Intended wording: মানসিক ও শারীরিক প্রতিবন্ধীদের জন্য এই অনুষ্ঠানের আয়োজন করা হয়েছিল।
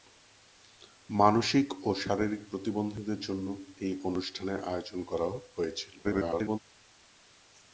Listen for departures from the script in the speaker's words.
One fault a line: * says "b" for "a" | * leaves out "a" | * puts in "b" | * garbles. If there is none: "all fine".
* garbles